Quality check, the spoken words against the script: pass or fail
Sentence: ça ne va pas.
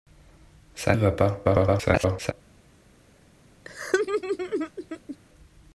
fail